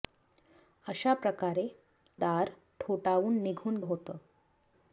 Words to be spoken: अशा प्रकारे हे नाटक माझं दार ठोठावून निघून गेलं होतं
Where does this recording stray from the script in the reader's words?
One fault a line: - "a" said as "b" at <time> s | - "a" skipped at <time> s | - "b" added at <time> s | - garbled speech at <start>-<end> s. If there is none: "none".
- "हे नाटक माझं" skipped at 1.6 s
- "गेलं" skipped at 3.8 s